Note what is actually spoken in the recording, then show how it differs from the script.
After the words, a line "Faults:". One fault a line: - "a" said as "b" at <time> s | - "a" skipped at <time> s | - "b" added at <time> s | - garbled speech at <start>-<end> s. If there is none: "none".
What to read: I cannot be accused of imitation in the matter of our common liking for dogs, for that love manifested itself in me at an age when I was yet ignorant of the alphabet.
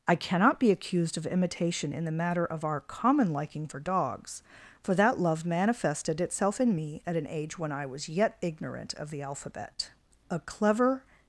I cannot be accused of imitation in the matter of our common liking for dogs, for that love manifested itself in me at an age when I was yet ignorant of the alphabet. A clever
Faults:
- "A clever" added at 10.3 s